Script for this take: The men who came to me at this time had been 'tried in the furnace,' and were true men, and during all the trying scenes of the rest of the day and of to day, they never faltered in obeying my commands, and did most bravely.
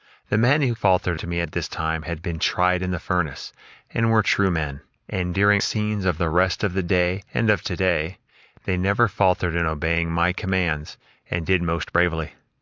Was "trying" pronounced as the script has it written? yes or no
no